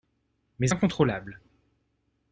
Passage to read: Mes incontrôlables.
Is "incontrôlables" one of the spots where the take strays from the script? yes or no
no